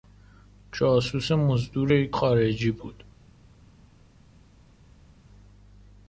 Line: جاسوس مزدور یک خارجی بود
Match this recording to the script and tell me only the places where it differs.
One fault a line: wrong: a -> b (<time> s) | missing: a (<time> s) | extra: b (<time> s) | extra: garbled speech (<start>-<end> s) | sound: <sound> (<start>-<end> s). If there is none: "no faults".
no faults